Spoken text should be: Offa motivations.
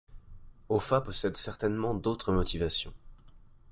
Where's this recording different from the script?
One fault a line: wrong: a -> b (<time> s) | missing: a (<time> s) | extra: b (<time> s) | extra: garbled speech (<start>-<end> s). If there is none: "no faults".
extra: possède certainement d'autres (1.0 s)